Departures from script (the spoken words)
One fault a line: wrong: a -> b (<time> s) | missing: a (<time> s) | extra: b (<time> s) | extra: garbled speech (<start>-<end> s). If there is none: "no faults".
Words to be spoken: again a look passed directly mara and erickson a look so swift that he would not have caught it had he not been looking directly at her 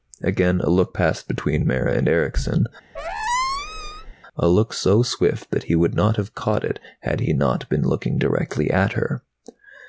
wrong: directly -> between (1.3 s)